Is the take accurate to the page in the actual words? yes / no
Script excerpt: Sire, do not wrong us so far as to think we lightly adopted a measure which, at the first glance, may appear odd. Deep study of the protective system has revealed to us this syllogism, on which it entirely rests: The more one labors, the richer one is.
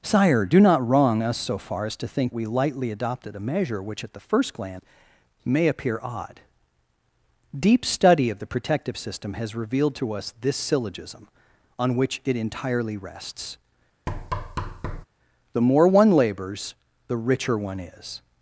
yes